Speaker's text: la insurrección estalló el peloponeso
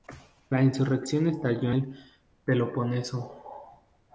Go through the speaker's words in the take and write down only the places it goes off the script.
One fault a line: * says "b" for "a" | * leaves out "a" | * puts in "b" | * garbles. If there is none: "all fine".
all fine